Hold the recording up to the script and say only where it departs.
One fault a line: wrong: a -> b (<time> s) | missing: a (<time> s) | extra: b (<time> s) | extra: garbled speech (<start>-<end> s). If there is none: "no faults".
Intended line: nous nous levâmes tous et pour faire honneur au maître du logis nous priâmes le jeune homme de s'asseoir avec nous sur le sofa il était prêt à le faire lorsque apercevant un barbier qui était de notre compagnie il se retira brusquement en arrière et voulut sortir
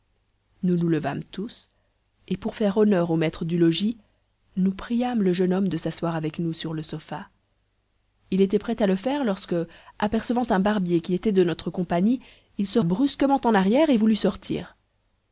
missing: retira (12.8 s)